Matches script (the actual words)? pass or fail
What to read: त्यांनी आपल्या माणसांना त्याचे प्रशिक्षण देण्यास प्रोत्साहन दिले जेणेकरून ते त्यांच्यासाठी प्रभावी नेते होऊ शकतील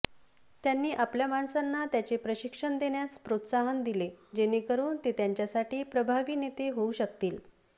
pass